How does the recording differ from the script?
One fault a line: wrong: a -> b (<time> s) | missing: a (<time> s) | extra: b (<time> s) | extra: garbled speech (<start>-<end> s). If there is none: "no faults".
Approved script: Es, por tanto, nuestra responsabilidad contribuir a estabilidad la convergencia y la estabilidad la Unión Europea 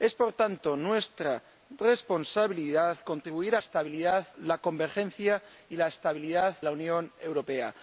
no faults